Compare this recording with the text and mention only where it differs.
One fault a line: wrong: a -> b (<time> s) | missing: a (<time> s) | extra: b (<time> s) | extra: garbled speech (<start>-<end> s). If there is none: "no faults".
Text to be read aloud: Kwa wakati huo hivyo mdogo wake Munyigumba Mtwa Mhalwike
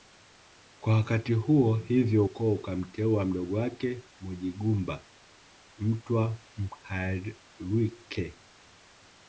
extra: ukoo ukamteua (2.2 s)